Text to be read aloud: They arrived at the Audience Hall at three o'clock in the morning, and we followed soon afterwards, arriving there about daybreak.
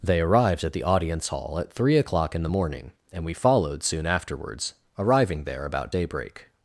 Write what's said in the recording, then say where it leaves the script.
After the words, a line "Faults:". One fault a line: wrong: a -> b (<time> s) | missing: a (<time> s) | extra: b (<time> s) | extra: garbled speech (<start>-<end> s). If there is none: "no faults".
They arrived at the Audience Hall at three o'clock in the morning, and we followed soon afterwards, arriving there about daybreak.
Faults:
no faults